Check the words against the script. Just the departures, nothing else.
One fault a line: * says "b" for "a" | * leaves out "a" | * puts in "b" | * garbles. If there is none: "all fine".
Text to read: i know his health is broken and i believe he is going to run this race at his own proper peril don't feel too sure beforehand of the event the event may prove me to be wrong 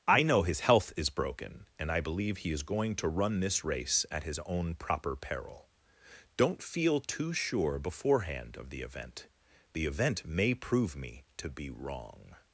all fine